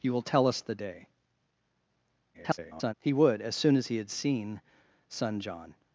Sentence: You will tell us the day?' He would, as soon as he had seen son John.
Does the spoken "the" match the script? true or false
true